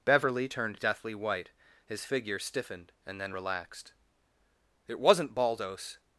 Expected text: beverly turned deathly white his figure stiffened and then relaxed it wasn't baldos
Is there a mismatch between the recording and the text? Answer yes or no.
no